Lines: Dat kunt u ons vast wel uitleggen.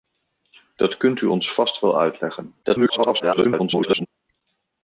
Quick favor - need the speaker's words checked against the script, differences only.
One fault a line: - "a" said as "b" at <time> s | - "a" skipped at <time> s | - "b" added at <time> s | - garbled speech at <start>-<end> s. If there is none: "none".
- garbled speech at 2.6-4.1 s